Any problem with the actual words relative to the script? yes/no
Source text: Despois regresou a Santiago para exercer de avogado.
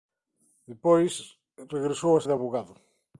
yes